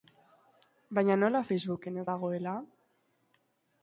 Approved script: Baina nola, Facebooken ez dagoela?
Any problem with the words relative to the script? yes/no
no